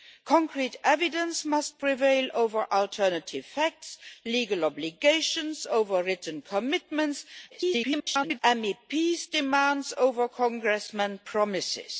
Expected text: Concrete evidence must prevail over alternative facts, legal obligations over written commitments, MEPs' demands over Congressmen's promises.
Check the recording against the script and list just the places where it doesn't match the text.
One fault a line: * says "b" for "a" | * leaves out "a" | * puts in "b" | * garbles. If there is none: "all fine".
* garbles